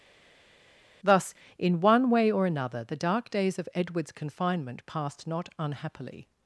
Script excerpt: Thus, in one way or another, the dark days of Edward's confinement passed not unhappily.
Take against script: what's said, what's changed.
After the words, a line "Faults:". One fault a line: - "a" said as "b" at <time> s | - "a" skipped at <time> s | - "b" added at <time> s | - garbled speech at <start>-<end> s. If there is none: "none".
Thus, in one way or another, the dark days of Edward's confinement passed not unhappily.
Faults:
none